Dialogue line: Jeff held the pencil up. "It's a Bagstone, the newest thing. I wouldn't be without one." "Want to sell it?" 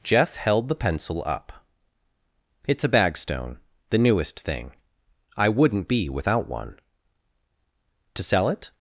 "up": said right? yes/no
yes